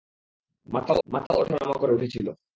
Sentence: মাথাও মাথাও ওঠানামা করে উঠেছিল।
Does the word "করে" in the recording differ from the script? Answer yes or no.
no